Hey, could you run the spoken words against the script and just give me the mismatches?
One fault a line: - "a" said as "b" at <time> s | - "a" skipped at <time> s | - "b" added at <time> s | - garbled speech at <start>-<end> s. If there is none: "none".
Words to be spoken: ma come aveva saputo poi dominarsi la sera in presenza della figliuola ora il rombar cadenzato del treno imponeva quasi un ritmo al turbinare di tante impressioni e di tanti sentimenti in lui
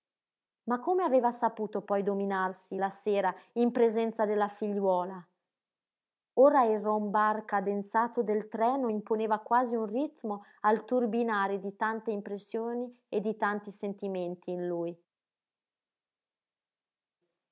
none